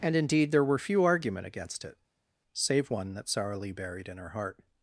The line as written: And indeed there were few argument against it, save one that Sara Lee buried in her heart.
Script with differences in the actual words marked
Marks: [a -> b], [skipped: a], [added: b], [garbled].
And indeed there were few argument against it, save one that Sara Lee buried in her heart.